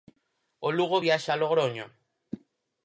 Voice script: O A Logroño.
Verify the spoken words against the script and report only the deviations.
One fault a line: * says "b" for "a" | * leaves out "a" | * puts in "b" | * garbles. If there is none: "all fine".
* puts in "Lugo viaxa"